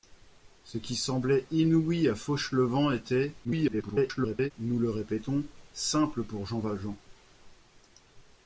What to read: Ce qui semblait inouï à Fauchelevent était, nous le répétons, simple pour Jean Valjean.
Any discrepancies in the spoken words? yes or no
yes